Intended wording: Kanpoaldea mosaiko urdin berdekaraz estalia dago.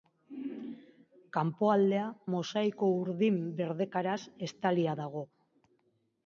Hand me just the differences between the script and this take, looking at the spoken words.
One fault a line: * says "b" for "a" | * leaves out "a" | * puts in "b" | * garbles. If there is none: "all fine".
all fine